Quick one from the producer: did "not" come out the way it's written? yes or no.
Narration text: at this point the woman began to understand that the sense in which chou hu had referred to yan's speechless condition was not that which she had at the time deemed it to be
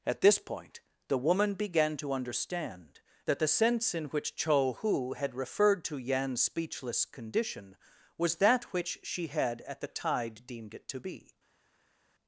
no